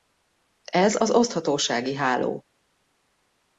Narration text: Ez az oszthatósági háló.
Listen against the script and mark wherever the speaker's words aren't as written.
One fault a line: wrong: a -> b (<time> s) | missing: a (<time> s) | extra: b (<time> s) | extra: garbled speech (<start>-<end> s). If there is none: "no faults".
no faults